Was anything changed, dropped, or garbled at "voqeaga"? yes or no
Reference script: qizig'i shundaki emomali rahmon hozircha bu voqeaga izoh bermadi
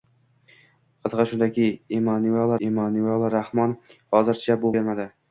yes